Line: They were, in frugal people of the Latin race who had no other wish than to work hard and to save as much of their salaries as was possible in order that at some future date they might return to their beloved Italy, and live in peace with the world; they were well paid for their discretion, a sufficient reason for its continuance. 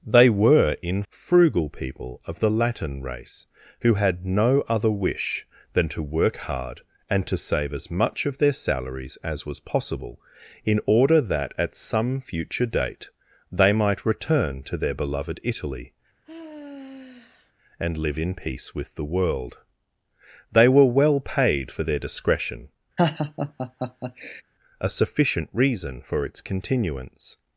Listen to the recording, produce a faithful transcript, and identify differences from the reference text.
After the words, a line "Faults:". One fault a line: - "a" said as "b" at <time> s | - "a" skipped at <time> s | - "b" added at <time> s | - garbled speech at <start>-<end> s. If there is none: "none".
They were, in frugal people of the Latin race who had no other wish than to work hard and to save as much of their salaries as was possible in order that at some future date they might return to their beloved Italy, and live in peace with the world; they were well paid for their discretion, a sufficient reason for its continuance.
Faults:
none